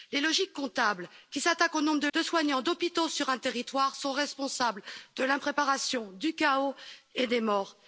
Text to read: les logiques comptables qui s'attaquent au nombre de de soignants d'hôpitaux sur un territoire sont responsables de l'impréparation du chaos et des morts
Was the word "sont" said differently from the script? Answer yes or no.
no